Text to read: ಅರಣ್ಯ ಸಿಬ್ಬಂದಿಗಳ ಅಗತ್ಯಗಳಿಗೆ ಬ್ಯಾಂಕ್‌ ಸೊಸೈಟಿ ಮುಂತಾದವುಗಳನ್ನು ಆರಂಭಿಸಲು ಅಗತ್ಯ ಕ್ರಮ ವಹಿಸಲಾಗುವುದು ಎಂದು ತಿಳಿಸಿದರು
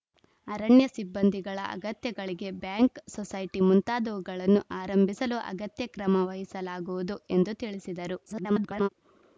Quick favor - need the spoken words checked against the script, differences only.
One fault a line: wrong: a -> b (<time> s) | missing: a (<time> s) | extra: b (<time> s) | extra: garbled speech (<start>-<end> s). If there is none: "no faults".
extra: garbled speech (8.3-8.9 s)